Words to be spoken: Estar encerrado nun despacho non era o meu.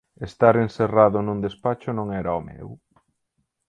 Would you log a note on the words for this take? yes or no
no